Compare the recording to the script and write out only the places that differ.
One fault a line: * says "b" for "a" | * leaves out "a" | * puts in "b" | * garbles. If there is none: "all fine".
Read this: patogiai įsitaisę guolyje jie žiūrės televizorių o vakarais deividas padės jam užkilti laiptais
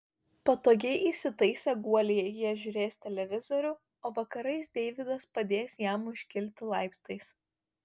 all fine